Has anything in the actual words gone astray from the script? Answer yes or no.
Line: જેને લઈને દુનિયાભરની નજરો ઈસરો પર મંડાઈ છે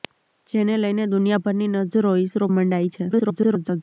yes